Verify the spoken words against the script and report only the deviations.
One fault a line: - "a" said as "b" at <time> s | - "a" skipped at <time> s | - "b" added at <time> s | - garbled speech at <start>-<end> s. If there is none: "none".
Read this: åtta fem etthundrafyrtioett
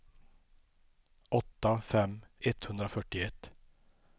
none